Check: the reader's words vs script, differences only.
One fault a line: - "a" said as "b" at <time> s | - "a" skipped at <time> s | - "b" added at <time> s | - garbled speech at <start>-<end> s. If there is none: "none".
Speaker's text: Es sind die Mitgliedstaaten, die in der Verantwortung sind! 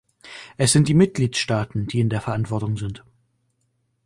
none